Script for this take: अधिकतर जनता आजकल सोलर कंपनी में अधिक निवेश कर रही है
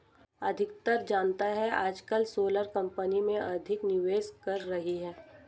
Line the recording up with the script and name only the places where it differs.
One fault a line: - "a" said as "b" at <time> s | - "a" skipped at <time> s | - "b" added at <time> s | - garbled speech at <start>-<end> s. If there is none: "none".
none